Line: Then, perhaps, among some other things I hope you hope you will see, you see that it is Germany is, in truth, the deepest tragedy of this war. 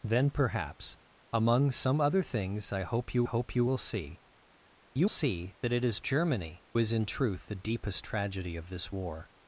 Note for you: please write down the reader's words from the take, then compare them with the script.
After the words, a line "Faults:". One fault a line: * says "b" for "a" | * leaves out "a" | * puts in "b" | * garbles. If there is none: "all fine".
Then, perhaps, among some other things I hope you hope you will see, you see that it is Germany is, in truth, the deepest tragedy of this war.
Faults:
all fine